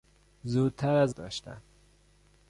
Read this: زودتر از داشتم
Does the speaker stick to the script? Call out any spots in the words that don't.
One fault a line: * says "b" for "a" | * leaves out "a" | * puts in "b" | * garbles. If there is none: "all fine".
all fine